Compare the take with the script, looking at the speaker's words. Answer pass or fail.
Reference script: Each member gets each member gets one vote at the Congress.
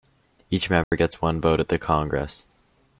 fail